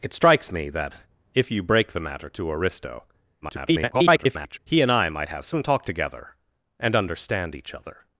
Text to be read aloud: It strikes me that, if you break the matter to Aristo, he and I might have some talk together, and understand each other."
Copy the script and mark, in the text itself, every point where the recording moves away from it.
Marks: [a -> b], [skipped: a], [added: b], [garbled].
It strikes me that, if you break the matter to Aristo, [garbled] he and I might have some talk together, and understand each other."